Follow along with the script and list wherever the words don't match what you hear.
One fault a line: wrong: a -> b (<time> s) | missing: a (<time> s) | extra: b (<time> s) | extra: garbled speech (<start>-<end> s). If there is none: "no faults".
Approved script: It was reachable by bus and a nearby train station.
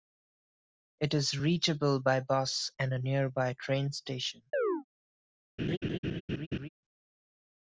wrong: was -> is (1.1 s)